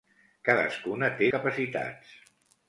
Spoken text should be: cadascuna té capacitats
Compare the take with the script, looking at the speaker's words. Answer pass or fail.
pass